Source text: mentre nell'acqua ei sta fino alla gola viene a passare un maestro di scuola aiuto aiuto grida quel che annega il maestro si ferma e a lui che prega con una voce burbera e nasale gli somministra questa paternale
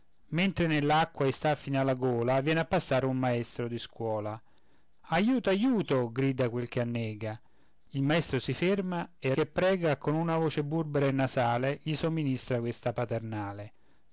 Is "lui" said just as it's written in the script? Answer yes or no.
no